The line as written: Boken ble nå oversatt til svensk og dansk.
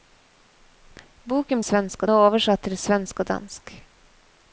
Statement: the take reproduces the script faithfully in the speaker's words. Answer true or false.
false